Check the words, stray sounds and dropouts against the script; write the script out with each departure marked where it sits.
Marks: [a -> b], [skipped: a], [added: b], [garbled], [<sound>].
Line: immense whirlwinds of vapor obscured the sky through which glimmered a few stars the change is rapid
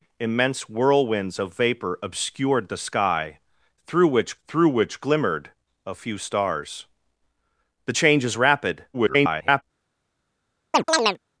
immense whirlwinds of vapor obscured the sky through which [added: through which] glimmered a few stars the change is rapid [garbled] [chirp]